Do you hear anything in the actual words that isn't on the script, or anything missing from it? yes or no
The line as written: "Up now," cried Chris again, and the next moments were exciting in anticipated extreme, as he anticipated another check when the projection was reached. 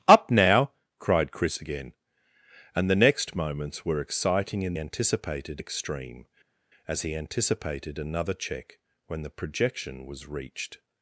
no